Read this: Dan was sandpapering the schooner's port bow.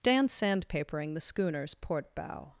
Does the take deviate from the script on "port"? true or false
false